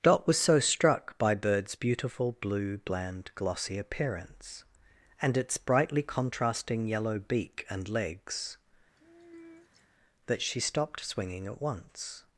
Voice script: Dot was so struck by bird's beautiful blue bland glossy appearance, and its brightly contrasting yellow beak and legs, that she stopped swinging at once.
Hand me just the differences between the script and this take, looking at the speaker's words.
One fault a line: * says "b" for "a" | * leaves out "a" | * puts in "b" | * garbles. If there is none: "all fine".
all fine